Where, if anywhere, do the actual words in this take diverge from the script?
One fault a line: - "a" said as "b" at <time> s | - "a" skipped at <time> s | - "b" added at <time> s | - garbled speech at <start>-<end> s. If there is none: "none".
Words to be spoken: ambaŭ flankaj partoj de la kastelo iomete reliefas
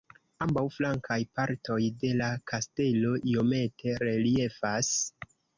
none